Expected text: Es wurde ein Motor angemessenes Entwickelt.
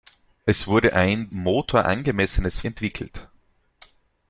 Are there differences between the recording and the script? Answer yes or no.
no